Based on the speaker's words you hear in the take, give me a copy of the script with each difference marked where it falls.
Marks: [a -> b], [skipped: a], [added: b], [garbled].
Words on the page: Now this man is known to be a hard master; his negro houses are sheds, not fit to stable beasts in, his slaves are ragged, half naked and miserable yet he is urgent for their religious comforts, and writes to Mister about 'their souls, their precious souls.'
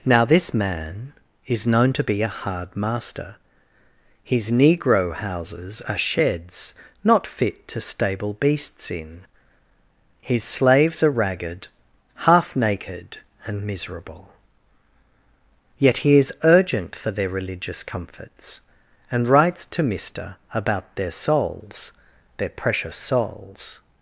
Now this man is known to be a hard master; his negro houses are sheds, not fit to stable beasts in, his slaves are ragged, half naked and miserable yet he is urgent for their religious comforts, and writes to Mister about 'their souls, their precious souls.'